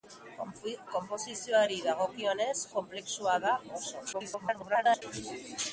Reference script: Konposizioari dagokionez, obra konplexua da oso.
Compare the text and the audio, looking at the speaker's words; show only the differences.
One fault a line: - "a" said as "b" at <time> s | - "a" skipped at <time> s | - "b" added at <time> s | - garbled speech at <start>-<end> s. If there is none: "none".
- "obra" skipped at 2.5 s
- garbled speech at 4.1-5.0 s